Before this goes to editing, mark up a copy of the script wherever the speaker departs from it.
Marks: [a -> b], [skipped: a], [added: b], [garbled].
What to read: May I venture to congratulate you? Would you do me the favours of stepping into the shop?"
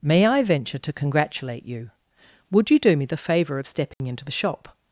May I venture to congratulate you? Would you do me the [favours -> favour] of stepping into the shop?"